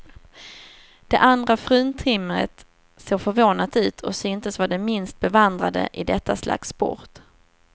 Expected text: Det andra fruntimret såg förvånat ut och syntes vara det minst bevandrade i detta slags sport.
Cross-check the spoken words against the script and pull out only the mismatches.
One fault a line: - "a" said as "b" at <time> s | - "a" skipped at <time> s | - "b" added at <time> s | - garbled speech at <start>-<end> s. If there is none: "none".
none